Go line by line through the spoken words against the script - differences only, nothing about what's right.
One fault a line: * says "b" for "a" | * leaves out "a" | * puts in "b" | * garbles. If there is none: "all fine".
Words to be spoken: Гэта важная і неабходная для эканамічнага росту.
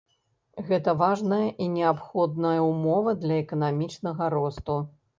* puts in "ўмова"